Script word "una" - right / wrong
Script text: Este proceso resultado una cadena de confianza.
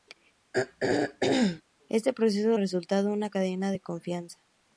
right